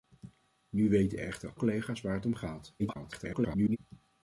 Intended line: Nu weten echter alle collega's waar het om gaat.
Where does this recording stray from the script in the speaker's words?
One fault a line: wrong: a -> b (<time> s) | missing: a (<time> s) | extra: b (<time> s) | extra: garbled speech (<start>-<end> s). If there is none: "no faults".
missing: alle (1.5 s)
extra: garbled speech (2.8-3.8 s)